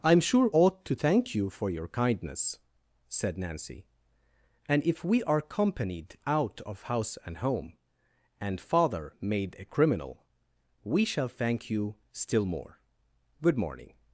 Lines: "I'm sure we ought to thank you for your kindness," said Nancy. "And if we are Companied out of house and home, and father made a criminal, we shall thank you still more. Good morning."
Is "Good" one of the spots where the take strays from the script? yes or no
no